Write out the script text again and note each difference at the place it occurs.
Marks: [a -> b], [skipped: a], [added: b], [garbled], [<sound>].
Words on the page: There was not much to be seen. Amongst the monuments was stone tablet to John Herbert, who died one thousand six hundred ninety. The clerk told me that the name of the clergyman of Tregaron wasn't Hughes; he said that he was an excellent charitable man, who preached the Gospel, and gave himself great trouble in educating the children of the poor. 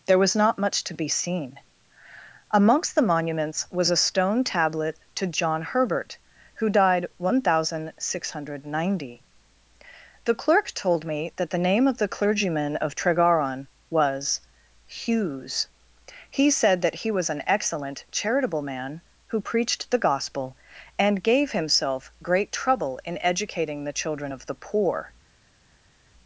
There was not much to be seen. Amongst the monuments was [added: a] stone tablet to John Herbert, who died one thousand six hundred ninety. The clerk told me that the name of the clergyman of Tregaron [wasn't -> was] Hughes; he said that he was an excellent charitable man, who preached the Gospel, and gave himself great trouble in educating the children of the poor.